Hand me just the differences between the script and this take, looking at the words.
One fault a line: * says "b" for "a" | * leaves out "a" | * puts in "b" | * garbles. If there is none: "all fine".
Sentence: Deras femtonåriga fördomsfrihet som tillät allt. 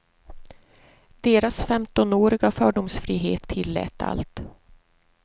* leaves out "som"